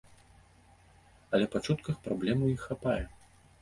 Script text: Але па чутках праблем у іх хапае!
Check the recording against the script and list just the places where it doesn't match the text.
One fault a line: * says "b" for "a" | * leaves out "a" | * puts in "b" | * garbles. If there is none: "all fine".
all fine